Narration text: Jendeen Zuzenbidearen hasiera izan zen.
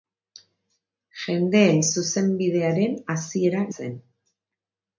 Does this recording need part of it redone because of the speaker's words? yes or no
yes